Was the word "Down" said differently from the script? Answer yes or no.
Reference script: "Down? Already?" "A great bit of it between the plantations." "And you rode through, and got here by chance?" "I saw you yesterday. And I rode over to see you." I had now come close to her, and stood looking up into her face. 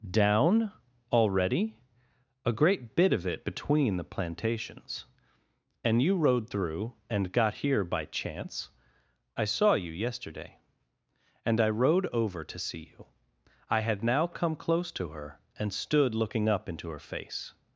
no